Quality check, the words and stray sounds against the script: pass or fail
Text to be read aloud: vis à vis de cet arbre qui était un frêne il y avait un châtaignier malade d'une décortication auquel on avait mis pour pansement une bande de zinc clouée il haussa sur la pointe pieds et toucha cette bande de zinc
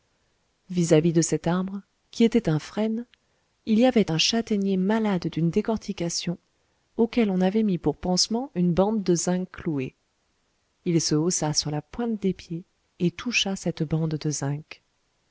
fail